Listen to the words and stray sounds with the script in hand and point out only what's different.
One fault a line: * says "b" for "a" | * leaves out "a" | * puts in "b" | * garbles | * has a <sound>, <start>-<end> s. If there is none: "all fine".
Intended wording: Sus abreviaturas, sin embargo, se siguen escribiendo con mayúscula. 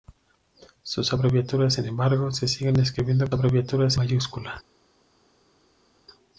* says "abreviaturas" for "con"